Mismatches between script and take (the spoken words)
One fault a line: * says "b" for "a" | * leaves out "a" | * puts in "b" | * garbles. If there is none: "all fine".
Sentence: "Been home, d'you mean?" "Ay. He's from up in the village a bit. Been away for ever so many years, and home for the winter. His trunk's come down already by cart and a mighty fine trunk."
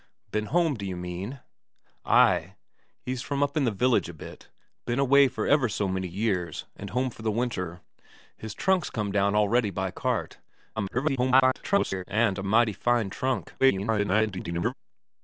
* garbles
* garbles